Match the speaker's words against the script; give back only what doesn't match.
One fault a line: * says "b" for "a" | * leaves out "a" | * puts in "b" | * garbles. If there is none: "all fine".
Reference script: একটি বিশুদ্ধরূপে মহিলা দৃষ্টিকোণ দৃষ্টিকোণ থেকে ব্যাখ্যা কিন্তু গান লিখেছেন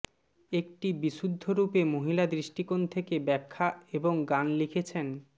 * leaves out "দৃষ্টিকোণ"
* says "এবং" for "কিন্তু"